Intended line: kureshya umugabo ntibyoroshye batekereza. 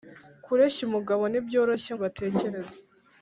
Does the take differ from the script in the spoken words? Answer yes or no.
no